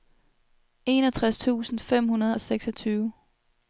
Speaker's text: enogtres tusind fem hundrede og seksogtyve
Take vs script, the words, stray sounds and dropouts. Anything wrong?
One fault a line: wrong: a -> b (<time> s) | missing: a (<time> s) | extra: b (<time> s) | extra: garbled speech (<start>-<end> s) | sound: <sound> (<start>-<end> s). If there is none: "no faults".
no faults